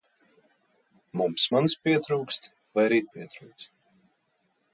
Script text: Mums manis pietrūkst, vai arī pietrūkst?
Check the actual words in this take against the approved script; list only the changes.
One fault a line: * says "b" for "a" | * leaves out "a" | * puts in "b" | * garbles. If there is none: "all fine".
all fine